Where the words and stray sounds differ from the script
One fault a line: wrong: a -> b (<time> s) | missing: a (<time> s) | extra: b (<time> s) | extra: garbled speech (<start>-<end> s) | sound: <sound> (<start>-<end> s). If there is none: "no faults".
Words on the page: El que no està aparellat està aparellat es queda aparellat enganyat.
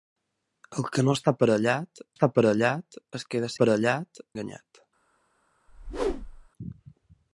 sound: whoosh (5.7-6.5 s)